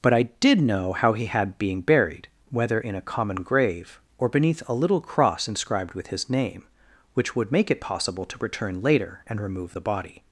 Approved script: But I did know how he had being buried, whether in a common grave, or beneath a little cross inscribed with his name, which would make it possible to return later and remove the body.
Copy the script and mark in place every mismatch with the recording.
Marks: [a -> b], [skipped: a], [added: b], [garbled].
But I did know how he had being buried, whether in a common grave, or beneath a little cross inscribed with his name, which would make it possible to return later and remove the body.